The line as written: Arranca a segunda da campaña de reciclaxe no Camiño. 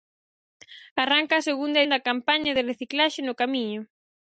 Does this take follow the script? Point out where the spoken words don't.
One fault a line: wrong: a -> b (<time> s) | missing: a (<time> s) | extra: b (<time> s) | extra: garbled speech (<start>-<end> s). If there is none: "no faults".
no faults